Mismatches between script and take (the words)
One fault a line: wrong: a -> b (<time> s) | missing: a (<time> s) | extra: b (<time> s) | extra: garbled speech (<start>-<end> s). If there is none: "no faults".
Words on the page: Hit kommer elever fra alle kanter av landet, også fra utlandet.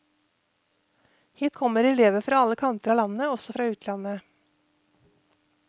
no faults